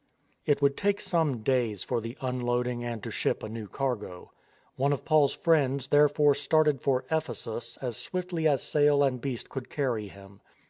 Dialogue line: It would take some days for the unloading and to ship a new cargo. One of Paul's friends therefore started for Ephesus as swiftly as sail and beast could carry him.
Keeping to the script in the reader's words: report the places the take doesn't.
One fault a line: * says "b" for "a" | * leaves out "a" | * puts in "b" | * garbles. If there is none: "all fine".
all fine